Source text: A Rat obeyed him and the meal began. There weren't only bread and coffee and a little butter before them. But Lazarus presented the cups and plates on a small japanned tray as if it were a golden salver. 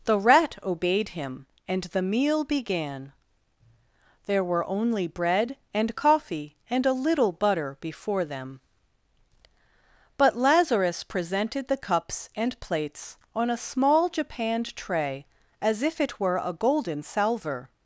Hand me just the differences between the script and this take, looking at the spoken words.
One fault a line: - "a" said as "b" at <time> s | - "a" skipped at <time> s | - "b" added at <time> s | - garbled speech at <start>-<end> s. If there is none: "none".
- "A" said as "The" at 0.1 s
- "weren't" said as "were" at 4.4 s